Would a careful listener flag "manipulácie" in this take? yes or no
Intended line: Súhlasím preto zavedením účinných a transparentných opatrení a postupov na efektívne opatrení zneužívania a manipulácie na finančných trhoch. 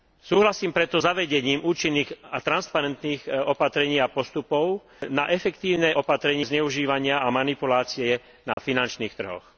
no